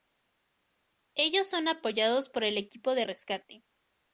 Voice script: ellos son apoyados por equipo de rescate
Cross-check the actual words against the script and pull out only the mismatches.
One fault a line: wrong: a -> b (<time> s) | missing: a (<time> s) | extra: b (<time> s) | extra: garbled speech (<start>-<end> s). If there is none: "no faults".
extra: el (2.4 s)